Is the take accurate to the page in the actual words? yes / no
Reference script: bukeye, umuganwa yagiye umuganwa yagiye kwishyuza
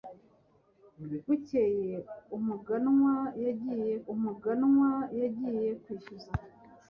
yes